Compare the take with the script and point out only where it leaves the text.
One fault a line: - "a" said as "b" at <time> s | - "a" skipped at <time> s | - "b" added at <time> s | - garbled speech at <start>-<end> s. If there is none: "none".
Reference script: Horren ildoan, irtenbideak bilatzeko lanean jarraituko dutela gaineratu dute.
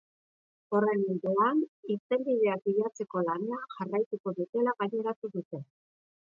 none